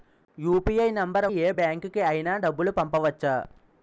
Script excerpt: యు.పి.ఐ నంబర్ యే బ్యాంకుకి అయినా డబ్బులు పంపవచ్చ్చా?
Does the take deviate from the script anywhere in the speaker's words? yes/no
no